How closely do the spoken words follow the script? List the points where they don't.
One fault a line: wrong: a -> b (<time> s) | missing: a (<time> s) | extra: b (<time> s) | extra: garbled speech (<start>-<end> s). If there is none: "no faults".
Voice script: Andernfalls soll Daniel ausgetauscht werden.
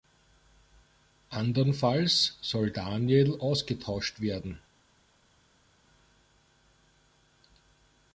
no faults